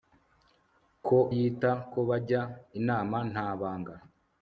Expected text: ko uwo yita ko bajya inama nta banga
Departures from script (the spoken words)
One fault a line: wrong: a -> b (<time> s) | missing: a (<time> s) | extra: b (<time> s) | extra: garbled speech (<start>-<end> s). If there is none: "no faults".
missing: uwo (1.2 s)